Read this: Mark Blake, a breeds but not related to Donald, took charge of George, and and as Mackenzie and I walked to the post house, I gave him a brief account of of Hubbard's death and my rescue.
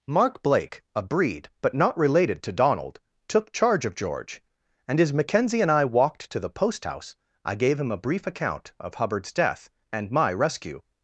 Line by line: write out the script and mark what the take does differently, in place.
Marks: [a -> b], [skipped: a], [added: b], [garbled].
Mark Blake, a [breeds -> breed] but not related to Donald, took charge of George, and [skipped: and] as Mackenzie and I walked to the post house, I gave him a brief account of [skipped: of] Hubbard's death and my rescue.